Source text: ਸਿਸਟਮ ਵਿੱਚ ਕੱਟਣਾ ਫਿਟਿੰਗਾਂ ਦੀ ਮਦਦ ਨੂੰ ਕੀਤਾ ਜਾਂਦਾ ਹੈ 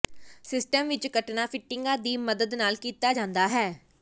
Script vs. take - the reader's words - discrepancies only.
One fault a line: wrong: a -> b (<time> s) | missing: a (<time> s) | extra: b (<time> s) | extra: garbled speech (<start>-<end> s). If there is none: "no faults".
wrong: ਨੂੰ -> ਨਾਲ (2.5 s)